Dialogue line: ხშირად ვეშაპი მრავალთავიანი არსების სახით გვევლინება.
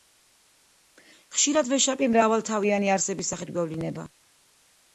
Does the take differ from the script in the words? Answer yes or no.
no